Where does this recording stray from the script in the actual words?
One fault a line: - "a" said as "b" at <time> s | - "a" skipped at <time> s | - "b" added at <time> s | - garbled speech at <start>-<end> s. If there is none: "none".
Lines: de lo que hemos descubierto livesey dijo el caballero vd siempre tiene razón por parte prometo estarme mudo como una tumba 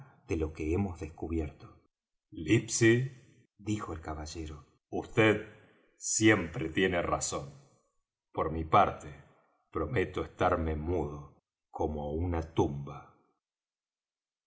- "mi" added at 8.5 s